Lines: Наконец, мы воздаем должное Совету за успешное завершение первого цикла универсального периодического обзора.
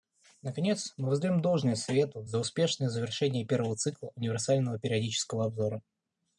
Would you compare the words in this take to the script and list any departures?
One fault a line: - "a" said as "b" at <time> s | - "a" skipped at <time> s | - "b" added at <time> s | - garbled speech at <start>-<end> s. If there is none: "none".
none